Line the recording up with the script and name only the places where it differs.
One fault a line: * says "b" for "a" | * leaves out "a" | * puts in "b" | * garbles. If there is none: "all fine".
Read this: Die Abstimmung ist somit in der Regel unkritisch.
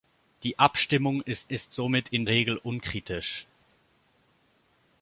* puts in "ist"
* leaves out "der"